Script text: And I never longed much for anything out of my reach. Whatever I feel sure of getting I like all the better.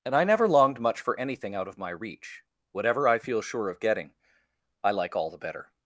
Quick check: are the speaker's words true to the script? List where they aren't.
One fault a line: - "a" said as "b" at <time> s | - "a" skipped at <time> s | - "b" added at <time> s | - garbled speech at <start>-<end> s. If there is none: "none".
none